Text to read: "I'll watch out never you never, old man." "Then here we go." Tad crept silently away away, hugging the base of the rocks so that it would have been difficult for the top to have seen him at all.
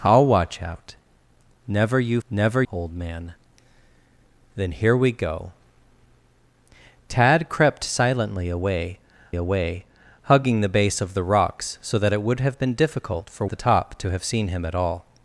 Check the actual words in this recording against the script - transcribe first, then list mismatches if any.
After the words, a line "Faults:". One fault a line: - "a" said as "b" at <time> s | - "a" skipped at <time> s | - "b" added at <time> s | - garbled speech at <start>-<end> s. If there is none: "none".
"I'll watch out never you never, old man." "Then here we go." Tad crept silently away away, hugging the base of the rocks so that it would have been difficult for the top to have seen him at all.
Faults:
none